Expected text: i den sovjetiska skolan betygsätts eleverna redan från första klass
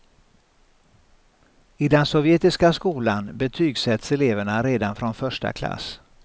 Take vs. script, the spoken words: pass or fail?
pass